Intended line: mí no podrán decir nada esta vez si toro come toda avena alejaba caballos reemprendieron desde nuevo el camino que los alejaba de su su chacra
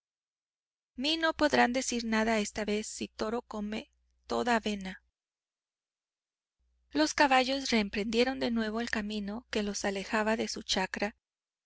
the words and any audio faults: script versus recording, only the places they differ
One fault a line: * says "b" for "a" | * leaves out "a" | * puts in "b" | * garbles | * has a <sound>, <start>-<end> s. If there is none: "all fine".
* says "los" for "alejaba"
* says "de" for "desde"
* leaves out "su"